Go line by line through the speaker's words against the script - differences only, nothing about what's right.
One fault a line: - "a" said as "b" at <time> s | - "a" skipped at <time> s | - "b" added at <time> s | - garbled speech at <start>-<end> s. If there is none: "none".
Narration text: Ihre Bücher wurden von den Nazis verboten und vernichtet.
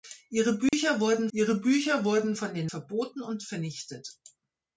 - "ihre Bücher wurden" added at 1.3 s
- "Nazis" skipped at 2.7 s